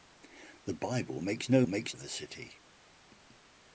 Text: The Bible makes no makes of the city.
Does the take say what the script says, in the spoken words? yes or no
yes